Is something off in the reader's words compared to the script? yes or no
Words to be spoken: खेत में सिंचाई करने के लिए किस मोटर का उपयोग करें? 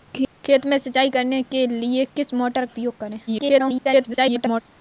yes